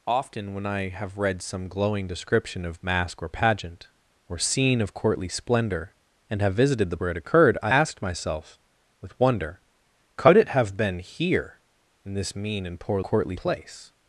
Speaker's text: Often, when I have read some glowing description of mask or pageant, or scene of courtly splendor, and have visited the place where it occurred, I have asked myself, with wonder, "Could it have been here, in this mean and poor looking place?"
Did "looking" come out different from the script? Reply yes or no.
yes